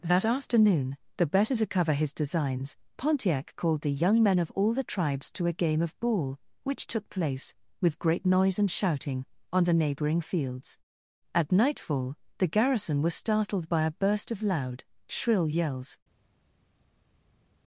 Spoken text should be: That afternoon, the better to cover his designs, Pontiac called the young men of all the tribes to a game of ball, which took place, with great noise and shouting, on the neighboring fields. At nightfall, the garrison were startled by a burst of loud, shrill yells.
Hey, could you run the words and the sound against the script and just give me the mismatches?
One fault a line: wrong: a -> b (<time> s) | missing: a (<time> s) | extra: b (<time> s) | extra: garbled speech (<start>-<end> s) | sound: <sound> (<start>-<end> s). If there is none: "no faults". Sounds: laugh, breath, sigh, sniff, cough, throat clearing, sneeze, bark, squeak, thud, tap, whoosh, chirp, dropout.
wrong: were -> was (13.0 s)